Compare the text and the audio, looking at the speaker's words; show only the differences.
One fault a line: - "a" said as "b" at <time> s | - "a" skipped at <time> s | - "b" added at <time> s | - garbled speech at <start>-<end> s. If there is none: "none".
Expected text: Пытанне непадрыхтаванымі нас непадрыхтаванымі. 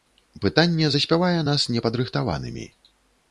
- "непадрыхтаванымі" said as "заспявае" at 0.9 s